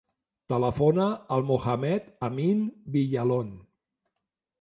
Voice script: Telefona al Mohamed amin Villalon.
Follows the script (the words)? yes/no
yes